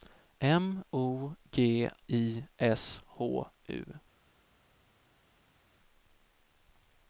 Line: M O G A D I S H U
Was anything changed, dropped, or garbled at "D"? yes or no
yes